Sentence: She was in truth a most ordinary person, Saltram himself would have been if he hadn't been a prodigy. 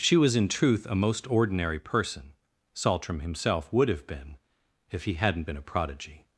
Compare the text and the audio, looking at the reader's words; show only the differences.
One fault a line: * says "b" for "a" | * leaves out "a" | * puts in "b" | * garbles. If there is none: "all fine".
all fine